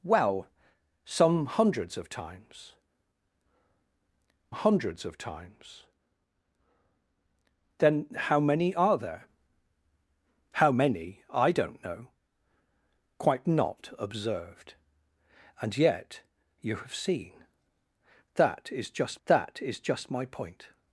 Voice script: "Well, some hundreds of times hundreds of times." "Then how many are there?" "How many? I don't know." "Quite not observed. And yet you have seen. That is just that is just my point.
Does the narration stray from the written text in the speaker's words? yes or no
no